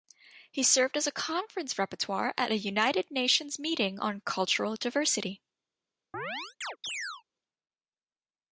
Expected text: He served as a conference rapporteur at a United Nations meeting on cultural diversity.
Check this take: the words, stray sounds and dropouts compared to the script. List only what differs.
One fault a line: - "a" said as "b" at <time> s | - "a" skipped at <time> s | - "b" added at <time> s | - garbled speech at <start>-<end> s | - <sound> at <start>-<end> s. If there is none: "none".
- chirp at 6.1-7.2 s